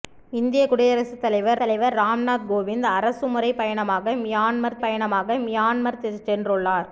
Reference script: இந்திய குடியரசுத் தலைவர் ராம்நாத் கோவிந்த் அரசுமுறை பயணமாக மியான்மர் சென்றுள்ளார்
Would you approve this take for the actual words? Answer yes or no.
no